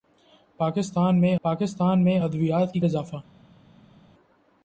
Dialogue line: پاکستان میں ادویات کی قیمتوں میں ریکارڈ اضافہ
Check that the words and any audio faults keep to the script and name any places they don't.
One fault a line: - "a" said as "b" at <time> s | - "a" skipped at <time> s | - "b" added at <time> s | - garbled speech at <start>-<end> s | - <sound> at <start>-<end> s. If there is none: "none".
- "پاکستان میں" added at 1.4 s
- "قیمتوں میں ریکارڈ" skipped at 2.8 s